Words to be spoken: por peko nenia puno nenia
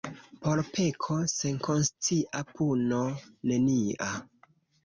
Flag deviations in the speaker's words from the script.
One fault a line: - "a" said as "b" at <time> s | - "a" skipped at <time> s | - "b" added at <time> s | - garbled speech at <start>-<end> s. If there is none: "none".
- "nenia" said as "senkonscia" at 1.3 s